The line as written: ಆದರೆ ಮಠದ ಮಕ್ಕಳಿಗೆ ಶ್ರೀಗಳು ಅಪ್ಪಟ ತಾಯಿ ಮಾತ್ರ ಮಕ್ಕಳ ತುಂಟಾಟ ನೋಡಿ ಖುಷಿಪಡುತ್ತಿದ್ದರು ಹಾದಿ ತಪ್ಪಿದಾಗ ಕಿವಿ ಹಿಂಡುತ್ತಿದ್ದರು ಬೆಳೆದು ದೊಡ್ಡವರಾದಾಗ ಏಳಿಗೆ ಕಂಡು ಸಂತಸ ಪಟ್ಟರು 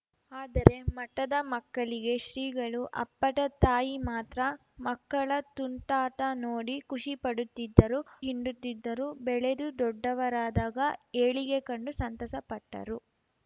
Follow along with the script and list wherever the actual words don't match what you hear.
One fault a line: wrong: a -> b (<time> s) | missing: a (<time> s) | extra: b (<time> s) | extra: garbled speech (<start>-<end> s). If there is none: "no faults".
missing: ಹಾದಿ ತಪ್ಪಿದಾಗ ಕಿವಿ (8.0 s)